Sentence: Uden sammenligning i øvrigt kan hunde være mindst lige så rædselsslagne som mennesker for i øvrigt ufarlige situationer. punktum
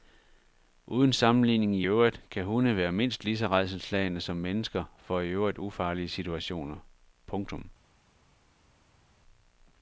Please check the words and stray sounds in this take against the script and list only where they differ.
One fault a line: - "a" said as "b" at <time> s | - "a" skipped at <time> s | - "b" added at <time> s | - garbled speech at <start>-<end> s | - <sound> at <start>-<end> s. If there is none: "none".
none